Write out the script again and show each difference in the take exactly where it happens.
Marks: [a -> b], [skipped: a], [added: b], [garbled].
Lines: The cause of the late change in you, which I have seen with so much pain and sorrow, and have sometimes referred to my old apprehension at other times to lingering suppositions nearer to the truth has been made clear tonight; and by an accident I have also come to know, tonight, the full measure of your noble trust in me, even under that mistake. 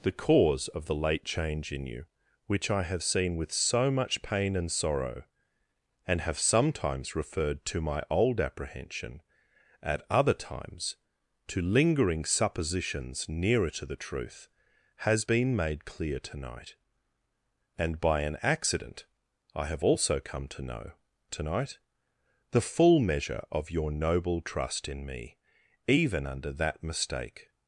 The cause of the late change in you, which I have seen with so much pain and sorrow, and have sometimes referred to my old apprehension at other times to lingering suppositions nearer to the truth has been made clear tonight; and by an accident I have also come to know, tonight, the full measure of your noble trust in me, even under that mistake.